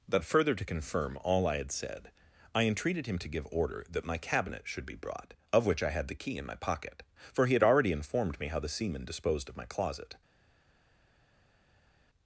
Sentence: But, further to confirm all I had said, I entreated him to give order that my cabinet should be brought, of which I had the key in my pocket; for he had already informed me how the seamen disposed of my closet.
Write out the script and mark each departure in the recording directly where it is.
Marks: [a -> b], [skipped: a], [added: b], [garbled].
But, further to confirm all I had said, I entreated him to give order that my cabinet should be brought, of which I had the key in my pocket; for he had already informed me how the seamen disposed of my closet.